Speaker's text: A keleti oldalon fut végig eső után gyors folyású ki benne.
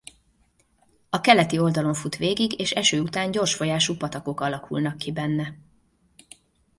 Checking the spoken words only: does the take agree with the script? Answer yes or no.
no